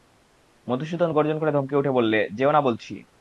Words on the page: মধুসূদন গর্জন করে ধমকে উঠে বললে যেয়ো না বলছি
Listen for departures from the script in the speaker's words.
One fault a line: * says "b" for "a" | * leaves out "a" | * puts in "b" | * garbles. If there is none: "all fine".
all fine